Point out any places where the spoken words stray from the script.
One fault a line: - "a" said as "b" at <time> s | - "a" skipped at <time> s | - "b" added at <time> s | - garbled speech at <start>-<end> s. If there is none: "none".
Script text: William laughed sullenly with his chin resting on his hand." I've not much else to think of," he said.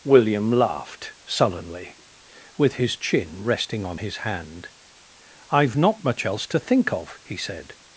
none